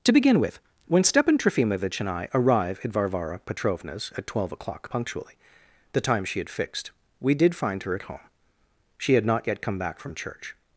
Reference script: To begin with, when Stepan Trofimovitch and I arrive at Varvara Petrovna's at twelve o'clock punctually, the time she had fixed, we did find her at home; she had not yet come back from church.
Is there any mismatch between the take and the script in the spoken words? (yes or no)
no